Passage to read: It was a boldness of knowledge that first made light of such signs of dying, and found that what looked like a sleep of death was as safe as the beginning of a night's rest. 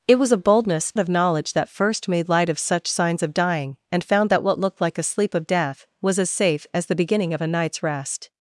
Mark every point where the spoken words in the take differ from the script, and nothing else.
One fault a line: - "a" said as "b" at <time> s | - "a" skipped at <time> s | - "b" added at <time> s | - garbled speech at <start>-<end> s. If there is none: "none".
none